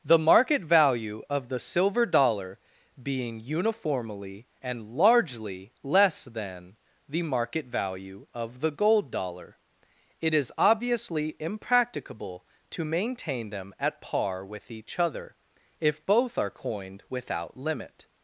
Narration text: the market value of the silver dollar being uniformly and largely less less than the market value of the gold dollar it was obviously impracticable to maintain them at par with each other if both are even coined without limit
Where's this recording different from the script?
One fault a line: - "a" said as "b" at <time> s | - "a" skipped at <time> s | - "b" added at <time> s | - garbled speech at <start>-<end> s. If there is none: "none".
- "less" skipped at 6.2 s
- "was" said as "is" at 10.3 s
- "even" skipped at 16.5 s